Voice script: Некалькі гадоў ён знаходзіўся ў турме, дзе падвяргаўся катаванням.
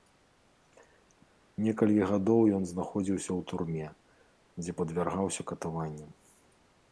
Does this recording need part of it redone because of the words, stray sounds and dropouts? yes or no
no